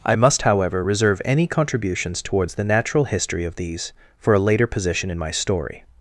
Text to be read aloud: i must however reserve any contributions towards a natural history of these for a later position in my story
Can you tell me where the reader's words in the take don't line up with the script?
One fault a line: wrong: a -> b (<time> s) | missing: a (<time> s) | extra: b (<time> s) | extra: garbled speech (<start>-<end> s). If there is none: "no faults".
wrong: a -> the (2.5 s)